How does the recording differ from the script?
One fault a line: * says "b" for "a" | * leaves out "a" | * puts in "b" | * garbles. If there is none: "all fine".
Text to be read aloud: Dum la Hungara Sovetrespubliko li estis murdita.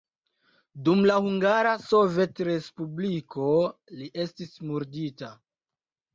all fine